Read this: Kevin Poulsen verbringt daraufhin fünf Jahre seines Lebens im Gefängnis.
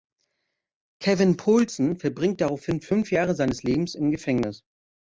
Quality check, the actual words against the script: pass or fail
pass